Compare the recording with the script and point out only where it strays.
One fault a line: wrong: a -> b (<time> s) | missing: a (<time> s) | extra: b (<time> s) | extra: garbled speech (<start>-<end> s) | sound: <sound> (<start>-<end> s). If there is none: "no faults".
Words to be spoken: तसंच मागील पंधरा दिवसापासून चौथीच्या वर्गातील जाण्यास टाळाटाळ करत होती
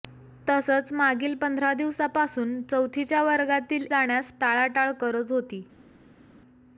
no faults